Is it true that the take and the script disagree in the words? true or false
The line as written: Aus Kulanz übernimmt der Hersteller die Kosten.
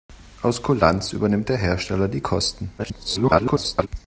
true